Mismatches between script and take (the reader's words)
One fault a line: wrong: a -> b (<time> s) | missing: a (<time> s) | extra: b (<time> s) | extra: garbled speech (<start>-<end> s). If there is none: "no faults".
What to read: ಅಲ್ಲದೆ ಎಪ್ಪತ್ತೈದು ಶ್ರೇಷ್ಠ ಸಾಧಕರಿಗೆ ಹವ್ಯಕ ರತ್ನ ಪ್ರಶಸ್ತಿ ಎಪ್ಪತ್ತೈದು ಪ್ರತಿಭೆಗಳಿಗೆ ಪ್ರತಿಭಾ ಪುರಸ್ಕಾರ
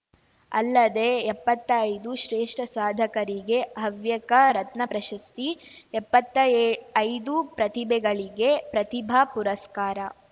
no faults